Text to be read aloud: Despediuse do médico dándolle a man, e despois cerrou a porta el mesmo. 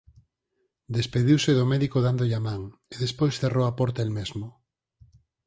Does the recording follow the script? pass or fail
pass